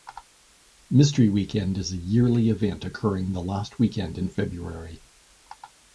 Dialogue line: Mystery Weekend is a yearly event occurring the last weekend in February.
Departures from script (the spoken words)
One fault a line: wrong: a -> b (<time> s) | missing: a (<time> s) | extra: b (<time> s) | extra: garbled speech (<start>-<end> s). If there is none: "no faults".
no faults